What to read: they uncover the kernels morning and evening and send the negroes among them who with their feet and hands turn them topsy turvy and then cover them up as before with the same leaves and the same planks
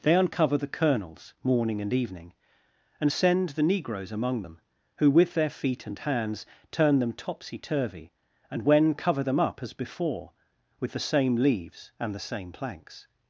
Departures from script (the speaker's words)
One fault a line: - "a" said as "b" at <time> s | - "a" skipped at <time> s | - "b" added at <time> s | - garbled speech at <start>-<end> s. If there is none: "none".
- "then" said as "when" at 8.6 s